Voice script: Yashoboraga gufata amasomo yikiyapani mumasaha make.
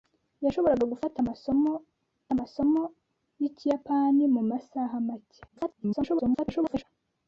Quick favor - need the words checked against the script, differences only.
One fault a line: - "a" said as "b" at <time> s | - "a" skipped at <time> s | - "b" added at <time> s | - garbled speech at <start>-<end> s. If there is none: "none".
- "amasomo" added at 2.4 s
- garbled speech at 5.5-6.8 s